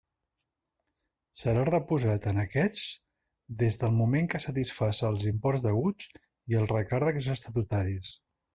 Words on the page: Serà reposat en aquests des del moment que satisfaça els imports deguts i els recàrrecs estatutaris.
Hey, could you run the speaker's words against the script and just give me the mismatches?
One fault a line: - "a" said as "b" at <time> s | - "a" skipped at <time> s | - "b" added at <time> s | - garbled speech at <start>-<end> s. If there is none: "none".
none